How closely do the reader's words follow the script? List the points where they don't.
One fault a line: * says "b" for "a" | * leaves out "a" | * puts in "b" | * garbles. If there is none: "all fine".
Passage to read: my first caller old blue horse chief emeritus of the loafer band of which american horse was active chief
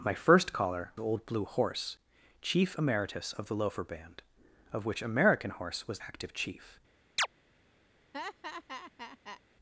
all fine